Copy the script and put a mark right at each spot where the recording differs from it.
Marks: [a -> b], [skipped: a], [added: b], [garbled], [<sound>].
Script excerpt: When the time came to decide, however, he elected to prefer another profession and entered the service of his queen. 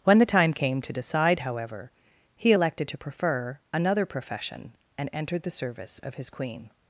When the time came to decide, however, he elected to prefer another profession and entered the service of his queen.